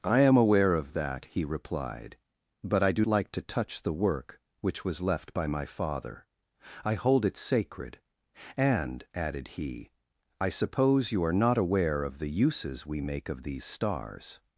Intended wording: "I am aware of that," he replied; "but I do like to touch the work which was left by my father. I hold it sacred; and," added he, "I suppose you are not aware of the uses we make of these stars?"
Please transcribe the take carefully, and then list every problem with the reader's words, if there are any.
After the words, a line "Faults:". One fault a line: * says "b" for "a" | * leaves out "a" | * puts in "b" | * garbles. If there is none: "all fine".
"I am aware of that," he replied; "but I do like to touch the work which was left by my father. I hold it sacred; and," added he, "I suppose you are not aware of the uses we make of these stars?"
Faults:
all fine